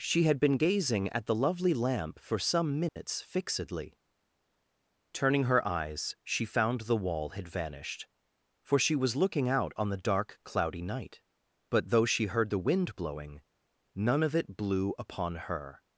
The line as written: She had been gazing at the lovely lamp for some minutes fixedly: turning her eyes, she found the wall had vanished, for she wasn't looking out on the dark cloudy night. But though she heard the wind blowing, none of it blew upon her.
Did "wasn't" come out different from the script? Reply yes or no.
yes